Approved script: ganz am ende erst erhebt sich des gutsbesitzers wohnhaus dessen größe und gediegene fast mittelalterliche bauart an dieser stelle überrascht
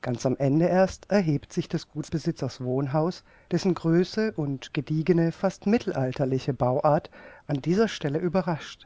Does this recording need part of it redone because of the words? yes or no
no